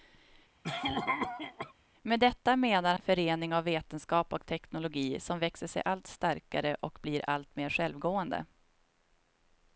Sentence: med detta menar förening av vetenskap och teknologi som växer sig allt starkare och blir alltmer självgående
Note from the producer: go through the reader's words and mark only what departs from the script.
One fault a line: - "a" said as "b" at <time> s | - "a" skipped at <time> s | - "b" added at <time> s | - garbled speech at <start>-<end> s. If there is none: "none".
none